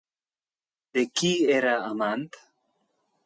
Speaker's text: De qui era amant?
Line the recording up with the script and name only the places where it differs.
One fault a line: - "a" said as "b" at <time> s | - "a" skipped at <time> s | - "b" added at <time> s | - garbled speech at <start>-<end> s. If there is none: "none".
none